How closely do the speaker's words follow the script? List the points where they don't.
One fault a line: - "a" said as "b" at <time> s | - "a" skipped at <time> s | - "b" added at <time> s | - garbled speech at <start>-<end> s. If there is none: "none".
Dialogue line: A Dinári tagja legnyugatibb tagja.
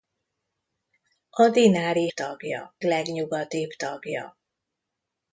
none